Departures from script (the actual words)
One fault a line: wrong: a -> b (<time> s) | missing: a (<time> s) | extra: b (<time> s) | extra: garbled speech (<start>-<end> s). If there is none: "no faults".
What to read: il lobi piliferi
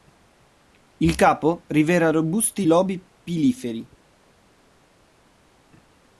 extra: capo rivela robusti (1.1 s)